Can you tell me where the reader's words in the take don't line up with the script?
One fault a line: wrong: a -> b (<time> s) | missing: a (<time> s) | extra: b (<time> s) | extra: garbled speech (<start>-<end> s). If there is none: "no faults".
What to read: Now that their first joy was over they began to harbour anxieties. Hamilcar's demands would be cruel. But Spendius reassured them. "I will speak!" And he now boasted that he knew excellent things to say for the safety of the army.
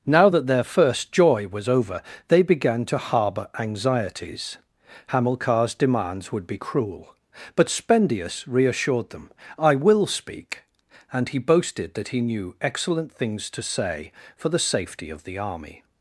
missing: now (11.4 s)